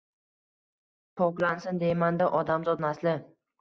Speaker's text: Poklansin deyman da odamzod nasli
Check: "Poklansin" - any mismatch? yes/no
no